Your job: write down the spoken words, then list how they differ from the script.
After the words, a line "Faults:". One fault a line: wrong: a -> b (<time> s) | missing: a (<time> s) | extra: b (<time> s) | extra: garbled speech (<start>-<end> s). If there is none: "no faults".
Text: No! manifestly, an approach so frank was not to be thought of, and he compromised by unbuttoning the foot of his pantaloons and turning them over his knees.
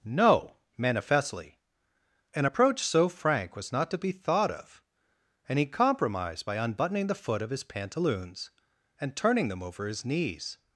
No! manifestly, an approach so frank was not to be thought of, and he compromised by unbuttoning the foot of his pantaloons and turning them over his knees.
Faults:
no faults